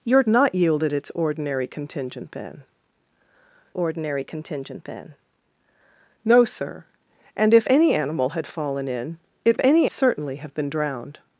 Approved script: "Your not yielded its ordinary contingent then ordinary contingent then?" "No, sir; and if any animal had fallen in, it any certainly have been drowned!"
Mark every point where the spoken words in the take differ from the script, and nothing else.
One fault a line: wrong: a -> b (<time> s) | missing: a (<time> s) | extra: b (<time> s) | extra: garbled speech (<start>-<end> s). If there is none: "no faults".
no faults